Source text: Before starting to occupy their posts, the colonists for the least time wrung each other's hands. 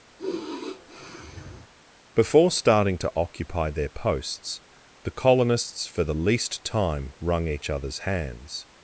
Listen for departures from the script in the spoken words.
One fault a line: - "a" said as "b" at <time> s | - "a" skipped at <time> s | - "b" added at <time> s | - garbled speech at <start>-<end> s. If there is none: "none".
none